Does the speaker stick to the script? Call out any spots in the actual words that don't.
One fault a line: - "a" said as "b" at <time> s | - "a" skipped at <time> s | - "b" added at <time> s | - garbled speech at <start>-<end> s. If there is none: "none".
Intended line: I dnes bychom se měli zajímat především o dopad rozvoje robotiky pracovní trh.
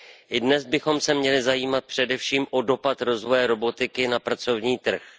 - "na" added at 4.1 s